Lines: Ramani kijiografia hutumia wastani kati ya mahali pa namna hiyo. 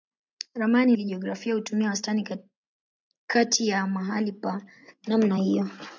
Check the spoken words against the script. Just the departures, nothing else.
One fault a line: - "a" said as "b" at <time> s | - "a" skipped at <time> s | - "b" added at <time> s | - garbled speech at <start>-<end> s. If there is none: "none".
none